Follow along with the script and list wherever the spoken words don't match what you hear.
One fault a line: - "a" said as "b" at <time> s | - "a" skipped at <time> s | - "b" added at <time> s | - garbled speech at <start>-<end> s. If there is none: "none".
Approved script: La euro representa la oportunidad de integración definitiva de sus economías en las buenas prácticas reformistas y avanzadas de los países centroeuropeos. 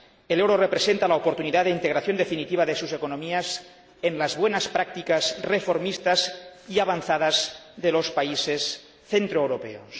- "La" said as "El" at 0.3 s